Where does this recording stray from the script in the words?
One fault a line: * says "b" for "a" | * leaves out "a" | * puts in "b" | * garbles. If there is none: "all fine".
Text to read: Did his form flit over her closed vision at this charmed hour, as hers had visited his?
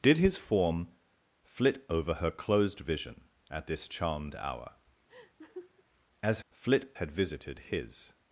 * says "flit" for "hers"